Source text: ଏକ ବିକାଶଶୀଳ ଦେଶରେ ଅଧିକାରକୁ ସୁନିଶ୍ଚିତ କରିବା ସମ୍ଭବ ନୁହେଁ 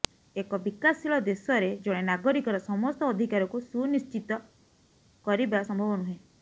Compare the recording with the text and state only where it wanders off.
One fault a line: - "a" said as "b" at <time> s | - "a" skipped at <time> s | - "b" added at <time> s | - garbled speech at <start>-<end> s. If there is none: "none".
- "ଜଣେ ନାଗରିକର ସମସ୍ତ" added at 1.8 s